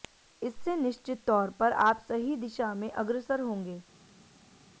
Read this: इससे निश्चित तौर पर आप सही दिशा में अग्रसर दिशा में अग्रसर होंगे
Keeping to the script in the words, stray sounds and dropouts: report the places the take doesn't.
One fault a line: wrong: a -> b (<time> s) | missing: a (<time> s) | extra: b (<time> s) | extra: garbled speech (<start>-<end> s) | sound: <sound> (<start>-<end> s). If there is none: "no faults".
missing: दिशा में अग्रसर (3.4 s)